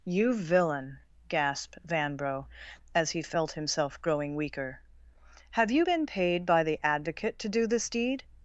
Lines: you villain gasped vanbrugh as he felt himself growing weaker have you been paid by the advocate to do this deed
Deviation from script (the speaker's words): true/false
false